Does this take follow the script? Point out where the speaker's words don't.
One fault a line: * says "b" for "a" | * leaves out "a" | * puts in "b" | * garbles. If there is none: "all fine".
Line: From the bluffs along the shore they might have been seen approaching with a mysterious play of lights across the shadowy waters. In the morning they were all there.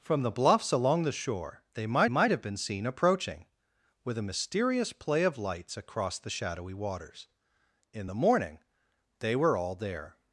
* puts in "might"